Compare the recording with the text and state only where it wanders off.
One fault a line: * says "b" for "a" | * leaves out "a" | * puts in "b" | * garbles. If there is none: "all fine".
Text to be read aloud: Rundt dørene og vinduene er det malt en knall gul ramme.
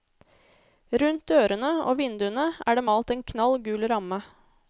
all fine